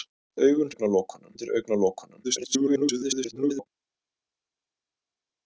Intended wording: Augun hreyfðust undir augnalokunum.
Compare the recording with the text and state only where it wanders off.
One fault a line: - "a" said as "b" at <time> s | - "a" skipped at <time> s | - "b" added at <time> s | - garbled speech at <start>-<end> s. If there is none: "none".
- "hreyfðust" said as "augnalokunum" at 0.7 s
- garbled speech at 2.2-3.7 s